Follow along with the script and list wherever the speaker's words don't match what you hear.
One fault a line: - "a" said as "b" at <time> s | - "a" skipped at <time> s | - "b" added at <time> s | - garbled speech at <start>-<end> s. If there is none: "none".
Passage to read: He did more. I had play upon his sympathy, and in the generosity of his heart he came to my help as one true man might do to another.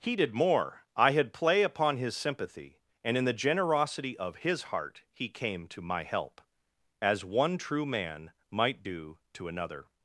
none